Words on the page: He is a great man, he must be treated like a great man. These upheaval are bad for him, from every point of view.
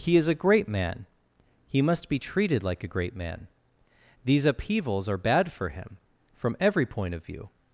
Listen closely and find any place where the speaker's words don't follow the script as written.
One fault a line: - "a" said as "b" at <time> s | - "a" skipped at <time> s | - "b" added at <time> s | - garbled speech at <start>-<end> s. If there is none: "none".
- "upheaval" said as "upheavals" at 4.5 s